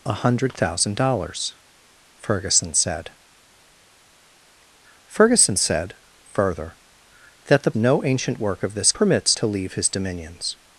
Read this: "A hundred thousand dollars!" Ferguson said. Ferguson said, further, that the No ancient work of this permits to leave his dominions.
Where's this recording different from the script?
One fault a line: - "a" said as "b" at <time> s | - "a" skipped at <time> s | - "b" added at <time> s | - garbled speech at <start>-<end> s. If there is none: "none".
none